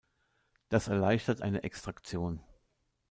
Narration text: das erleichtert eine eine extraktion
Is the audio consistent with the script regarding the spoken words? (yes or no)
no